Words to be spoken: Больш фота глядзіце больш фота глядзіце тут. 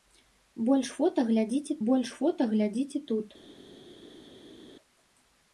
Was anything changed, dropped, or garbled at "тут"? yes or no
no